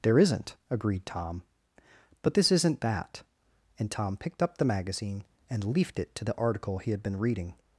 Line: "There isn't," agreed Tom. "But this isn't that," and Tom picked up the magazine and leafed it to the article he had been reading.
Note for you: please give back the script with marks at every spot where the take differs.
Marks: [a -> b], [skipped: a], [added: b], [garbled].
"There isn't," agreed Tom. "But this isn't that," and Tom picked up the magazine and leafed it to the article he had been reading.